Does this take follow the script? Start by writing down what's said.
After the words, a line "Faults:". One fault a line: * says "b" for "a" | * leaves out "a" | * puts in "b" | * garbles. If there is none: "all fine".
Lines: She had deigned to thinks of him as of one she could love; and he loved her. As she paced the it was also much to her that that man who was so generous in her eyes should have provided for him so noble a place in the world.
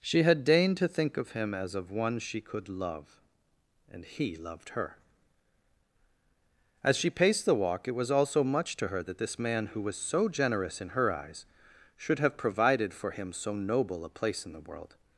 She had deigned to think of him as of one she could love; and he loved her. As she paced the walk it was also much to her that this man who was so generous in her eyes should have provided for him so noble a place in the world.
Faults:
* says "think" for "thinks"
* puts in "walk"
* says "this" for "that"